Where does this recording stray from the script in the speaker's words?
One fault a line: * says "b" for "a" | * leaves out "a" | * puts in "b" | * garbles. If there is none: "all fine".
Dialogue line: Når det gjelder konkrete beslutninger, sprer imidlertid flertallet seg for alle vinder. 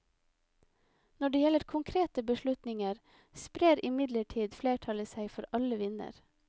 all fine